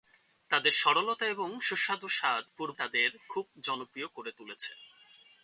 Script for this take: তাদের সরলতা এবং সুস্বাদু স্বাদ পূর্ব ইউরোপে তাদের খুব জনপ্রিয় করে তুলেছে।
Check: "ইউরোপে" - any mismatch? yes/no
yes